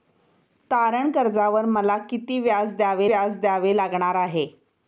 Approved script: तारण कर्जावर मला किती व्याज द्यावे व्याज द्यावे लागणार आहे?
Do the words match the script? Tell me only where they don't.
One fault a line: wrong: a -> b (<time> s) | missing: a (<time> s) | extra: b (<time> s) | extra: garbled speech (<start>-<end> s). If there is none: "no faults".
no faults